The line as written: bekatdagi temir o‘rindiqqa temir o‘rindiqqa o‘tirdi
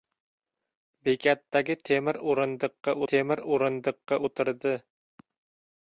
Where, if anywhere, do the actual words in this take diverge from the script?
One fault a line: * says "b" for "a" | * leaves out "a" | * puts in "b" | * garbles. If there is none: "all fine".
all fine